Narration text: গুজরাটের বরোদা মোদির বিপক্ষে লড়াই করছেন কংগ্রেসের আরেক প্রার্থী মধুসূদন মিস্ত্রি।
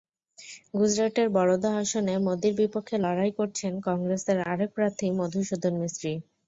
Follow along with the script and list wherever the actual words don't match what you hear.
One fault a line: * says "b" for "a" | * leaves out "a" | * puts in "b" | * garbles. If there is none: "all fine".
* puts in "আসনে"